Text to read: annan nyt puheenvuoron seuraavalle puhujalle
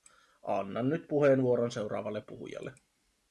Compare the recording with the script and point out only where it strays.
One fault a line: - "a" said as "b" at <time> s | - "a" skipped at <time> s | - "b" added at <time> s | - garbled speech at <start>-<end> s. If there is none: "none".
none